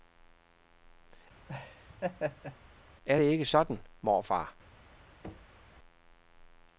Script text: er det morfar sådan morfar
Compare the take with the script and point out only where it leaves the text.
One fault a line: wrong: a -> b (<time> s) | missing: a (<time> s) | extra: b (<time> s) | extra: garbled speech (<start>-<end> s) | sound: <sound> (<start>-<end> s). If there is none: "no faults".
sound: laugh (1.5-2.6 s)
wrong: morfar -> ikke (3.2 s)
sound: thud (5.2-5.6 s)